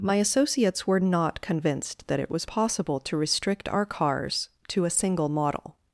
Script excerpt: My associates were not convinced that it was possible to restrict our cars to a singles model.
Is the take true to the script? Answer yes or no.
no